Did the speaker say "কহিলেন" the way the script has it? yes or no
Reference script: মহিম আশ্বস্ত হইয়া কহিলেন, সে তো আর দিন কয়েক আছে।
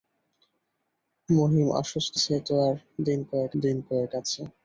no